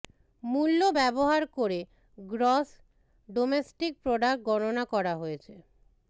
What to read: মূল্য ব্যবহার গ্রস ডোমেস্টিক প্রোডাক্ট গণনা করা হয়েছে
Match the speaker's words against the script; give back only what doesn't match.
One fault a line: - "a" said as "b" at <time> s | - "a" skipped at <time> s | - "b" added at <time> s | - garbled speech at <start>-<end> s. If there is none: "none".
- "করে" added at 1.6 s